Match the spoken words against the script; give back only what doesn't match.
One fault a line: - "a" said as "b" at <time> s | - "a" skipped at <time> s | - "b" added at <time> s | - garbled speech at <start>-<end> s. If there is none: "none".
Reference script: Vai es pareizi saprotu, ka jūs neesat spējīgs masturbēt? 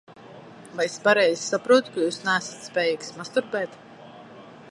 none